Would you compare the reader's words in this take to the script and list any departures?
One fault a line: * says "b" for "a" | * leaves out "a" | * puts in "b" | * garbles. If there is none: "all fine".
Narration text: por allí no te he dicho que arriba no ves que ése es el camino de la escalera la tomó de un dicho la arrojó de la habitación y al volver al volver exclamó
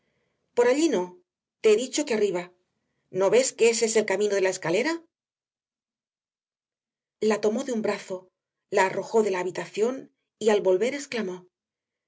* says "brazo" for "dicho"
* leaves out "al volver"